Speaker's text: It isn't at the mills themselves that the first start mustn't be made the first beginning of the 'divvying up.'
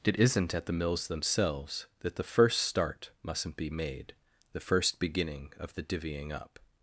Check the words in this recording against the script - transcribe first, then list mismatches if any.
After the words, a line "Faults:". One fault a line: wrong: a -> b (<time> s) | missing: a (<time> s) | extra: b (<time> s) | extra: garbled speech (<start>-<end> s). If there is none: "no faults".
It isn't at the mills themselves that the first start mustn't be made the first beginning of the 'divvying up.'
Faults:
no faults